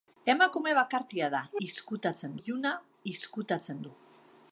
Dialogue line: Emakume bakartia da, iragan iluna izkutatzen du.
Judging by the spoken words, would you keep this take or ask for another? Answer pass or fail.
fail